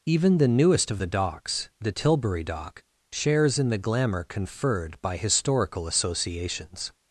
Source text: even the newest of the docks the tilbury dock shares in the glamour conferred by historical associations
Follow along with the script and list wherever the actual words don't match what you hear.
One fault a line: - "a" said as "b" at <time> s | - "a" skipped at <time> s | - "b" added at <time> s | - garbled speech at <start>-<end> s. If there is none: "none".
none